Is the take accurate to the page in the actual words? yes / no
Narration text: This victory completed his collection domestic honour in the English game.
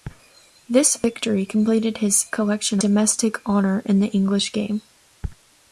yes